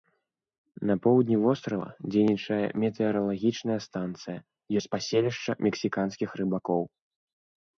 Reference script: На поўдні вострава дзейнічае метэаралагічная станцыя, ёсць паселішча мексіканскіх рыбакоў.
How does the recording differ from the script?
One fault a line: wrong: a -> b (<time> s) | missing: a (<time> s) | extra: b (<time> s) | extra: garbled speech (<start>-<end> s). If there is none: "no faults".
no faults